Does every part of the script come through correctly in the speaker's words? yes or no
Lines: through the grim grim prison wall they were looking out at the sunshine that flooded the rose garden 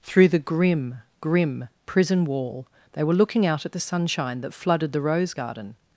yes